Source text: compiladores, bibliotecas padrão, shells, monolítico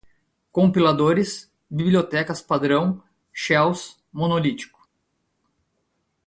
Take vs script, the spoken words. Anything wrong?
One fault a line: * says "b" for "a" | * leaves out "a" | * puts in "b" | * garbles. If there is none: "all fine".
all fine